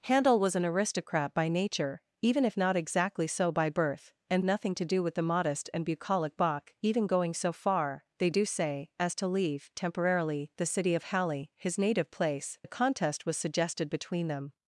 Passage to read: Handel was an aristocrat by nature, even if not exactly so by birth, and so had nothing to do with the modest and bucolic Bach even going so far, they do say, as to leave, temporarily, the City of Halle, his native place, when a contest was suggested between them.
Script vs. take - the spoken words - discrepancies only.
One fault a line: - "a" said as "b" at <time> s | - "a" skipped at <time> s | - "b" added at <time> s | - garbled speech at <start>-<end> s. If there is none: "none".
- "so had" skipped at 4.4 s
- "when" skipped at 12.6 s